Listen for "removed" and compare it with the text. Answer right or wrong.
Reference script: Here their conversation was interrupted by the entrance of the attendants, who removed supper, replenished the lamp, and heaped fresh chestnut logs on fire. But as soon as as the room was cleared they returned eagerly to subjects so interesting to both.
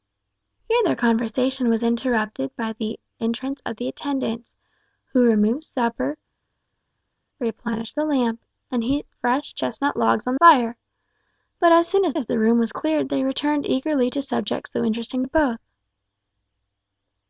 right